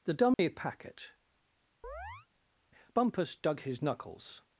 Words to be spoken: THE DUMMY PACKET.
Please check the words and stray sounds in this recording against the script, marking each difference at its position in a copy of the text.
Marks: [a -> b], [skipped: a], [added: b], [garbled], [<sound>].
THE DUMMY [dropout] PACKET. [chirp] [added: Bumpus dug his knuckles]